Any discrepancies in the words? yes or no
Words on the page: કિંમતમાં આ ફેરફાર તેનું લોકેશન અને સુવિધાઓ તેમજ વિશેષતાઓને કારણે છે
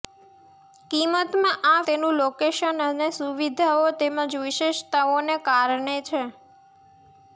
yes